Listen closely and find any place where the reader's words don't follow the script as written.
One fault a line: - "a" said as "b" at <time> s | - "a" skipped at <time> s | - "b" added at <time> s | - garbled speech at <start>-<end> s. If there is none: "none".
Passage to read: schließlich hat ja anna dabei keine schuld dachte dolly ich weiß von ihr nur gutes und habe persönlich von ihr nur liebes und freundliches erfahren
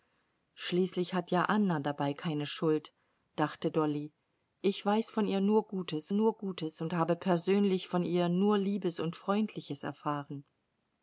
- "nur gutes" added at 6.1 s